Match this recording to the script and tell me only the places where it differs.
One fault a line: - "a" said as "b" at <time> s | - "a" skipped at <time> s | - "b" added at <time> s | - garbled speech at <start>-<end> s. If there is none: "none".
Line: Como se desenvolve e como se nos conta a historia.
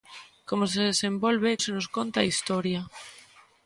- "como" skipped at 1.6 s